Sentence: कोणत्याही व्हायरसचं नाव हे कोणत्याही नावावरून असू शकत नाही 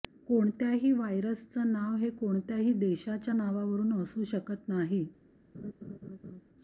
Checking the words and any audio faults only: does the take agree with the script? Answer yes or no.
no